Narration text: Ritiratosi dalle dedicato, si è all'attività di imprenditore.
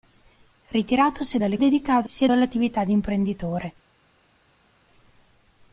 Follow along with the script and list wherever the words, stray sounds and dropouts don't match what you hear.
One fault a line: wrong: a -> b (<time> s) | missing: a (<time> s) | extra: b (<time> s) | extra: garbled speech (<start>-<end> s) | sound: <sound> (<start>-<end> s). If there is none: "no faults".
no faults